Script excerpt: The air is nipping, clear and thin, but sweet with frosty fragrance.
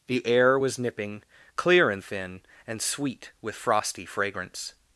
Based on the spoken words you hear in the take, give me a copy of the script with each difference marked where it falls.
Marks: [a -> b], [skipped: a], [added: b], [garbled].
The air [is -> was] nipping, clear and thin, [but -> and] sweet with frosty fragrance.